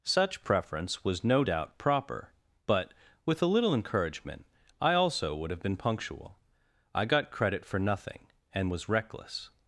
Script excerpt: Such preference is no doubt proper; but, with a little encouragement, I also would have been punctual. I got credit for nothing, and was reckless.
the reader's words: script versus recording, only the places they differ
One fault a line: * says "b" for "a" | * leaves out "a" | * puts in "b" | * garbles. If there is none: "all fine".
* says "was" for "is"